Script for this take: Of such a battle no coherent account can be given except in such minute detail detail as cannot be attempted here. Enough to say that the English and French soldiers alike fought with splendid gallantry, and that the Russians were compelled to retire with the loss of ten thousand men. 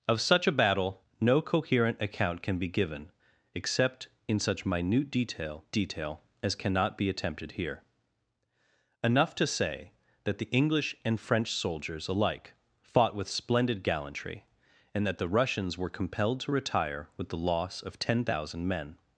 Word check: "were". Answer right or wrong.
right